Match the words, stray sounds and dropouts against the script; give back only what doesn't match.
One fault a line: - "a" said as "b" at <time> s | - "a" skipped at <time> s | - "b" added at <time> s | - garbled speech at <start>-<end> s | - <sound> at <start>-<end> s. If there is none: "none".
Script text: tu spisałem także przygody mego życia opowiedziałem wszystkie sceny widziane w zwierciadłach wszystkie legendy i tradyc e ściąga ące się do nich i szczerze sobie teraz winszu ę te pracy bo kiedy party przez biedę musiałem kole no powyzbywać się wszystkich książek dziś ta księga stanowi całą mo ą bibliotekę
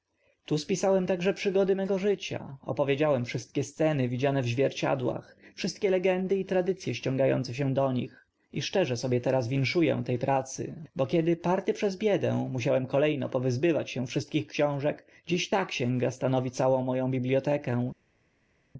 none